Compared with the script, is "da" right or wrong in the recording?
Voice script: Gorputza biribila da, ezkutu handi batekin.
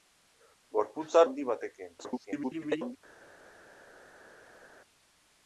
wrong